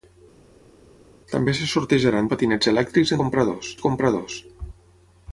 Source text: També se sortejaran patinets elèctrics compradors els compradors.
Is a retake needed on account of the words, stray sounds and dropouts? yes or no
no